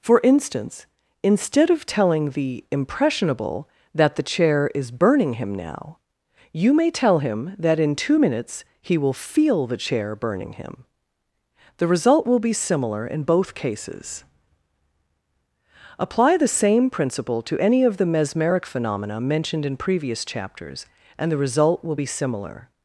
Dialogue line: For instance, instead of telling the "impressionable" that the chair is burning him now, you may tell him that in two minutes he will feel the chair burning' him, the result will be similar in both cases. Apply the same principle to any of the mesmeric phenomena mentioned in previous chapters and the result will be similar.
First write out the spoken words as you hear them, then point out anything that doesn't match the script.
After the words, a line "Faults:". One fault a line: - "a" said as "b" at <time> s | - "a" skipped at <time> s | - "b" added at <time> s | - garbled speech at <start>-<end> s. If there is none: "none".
For instance, instead of telling the "impressionable" that the chair is burning him now, you may tell him that in two minutes he will feel the chair burning' him, the result will be similar in both cases. Apply the same principle to any of the mesmeric phenomena mentioned in previous chapters and the result will be similar.
Faults:
none